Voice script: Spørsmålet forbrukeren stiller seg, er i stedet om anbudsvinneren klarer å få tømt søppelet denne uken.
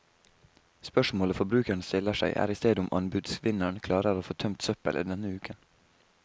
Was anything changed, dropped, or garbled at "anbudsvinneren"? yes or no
no